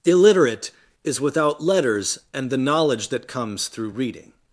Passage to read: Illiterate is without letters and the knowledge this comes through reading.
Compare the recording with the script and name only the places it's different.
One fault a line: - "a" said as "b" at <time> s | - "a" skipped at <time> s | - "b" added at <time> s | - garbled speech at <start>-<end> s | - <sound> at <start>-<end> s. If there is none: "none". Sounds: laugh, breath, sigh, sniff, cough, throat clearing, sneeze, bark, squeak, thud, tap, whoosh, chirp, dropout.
- "this" said as "that" at 3.1 s